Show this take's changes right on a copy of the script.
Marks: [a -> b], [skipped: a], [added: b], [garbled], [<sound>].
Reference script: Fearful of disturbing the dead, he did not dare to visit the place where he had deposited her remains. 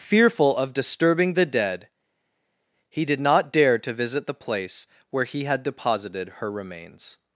Fearful of disturbing the dead, he did not dare to visit the place where he had deposited her remains.